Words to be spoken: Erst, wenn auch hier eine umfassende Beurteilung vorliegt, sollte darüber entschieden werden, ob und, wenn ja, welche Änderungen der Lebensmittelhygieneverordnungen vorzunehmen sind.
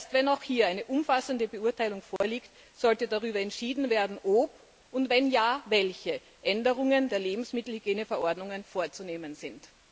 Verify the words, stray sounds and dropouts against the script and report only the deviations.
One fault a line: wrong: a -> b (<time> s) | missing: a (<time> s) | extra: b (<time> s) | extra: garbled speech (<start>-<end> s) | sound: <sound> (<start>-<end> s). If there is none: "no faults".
sound: dropout (2.2-2.2 s)